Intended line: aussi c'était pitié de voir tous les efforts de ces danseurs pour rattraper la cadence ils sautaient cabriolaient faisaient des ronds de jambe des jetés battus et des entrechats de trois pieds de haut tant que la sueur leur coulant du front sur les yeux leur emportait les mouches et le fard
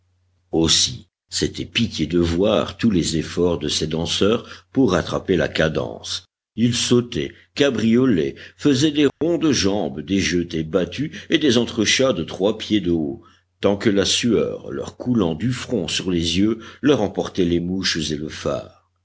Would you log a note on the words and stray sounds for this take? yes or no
yes